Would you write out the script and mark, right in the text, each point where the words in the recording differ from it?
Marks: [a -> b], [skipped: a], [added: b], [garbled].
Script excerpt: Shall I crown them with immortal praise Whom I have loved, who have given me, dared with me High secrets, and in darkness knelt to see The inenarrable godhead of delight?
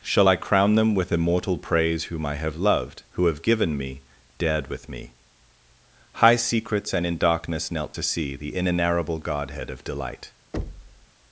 Shall I crown them with immortal praise Whom I have loved, who have given me, dared with me High secrets, and in darkness knelt to see The inenarrable godhead of delight?